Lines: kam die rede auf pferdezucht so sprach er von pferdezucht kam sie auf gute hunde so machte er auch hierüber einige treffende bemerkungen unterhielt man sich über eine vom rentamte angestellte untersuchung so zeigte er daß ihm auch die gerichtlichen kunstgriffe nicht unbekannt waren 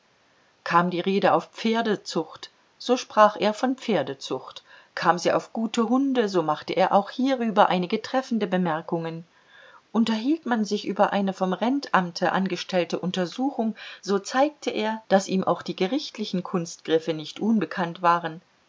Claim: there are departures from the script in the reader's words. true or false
false